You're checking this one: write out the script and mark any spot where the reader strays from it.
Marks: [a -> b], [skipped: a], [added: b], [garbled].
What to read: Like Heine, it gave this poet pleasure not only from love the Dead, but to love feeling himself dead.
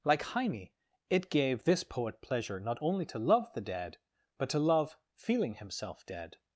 Like Heine, it gave this poet pleasure not only [from -> to] love the Dead, but to love feeling himself dead.